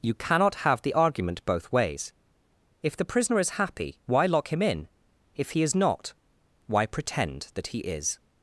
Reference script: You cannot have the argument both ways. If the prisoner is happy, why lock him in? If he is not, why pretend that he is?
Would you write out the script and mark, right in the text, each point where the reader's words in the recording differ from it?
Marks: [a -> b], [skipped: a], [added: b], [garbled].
You cannot have the argument both ways. If the prisoner is happy, why lock him in? If he is not, why pretend that he is?